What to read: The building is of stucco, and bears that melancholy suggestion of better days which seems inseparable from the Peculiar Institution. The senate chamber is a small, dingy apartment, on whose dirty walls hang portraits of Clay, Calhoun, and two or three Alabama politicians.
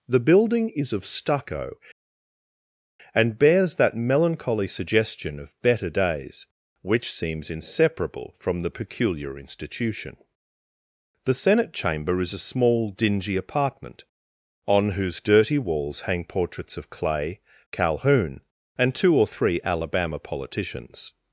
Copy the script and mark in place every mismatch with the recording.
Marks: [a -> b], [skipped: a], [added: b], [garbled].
The building is of stucco, and bears that melancholy suggestion of better days which seems inseparable from the Peculiar Institution. The senate chamber is a small, dingy apartment, on whose dirty walls hang portraits of Clay, Calhoun, and two or three Alabama politicians.